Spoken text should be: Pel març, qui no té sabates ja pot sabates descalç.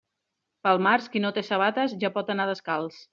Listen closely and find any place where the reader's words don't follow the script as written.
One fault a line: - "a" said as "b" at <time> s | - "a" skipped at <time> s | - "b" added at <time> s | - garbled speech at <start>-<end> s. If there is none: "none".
- "sabates" said as "anar" at 2.4 s